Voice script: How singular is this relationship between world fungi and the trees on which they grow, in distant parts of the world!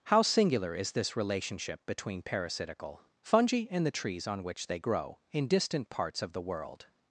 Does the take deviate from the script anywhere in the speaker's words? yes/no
yes